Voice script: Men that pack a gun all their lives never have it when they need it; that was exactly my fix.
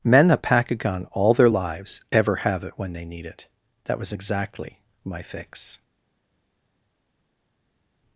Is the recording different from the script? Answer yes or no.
yes